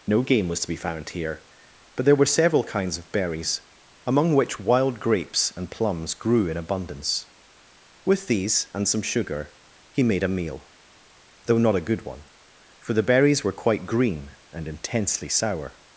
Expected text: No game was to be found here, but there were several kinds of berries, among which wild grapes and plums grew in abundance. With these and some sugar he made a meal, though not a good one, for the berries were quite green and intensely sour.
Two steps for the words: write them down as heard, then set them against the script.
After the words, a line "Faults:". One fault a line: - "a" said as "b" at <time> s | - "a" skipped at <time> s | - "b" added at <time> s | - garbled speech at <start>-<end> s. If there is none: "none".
No game was to be found here, but there were several kinds of berries, among which wild grapes and plums grew in abundance. With these and some sugar he made a meal, though not a good one, for the berries were quite green and intensely sour.
Faults:
none